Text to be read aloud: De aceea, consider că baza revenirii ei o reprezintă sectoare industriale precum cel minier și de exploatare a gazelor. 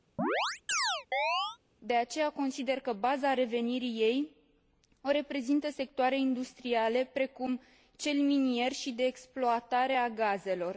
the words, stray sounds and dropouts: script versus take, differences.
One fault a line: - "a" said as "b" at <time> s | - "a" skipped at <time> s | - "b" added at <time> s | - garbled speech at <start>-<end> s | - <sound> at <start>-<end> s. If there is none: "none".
- chirp at 0.2-1.6 s